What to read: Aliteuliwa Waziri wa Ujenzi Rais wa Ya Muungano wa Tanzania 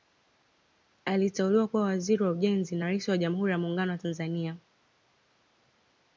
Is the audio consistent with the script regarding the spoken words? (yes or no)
no